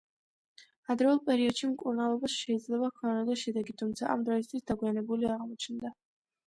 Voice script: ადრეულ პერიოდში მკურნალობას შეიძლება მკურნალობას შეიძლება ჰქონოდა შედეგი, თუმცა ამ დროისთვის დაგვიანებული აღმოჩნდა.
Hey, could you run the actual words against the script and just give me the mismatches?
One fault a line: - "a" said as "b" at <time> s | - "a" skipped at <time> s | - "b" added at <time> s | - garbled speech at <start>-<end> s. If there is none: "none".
- "მკურნალობას შეიძლება" skipped at 2.9 s